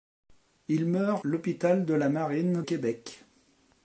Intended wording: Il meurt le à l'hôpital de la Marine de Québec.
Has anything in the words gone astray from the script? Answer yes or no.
yes